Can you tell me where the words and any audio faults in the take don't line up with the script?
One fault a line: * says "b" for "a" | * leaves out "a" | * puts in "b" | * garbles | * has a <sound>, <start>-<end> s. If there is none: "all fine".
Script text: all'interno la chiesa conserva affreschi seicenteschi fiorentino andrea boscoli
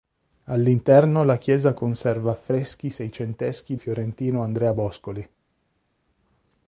all fine